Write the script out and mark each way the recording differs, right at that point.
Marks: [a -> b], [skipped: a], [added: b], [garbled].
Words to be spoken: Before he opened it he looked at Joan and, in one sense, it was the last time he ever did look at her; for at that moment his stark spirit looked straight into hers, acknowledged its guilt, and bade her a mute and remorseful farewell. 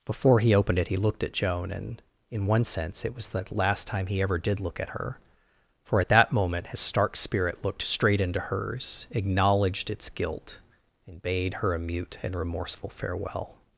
Before he opened it he looked at Joan and, in one sense, it was the last time he ever did look at her; for at that moment his stark spirit looked straight into hers, acknowledged its guilt, and bade her a mute and remorseful farewell.